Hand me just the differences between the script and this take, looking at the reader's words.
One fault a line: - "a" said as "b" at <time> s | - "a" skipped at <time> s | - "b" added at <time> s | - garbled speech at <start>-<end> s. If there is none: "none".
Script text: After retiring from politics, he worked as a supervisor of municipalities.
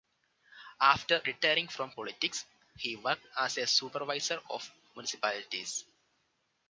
none